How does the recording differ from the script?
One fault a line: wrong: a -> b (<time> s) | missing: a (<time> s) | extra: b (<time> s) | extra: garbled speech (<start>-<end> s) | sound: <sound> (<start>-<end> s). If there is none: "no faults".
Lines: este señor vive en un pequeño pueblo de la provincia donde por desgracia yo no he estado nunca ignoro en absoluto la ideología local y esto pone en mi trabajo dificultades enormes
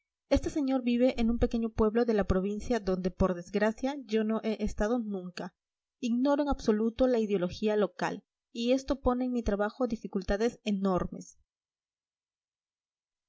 no faults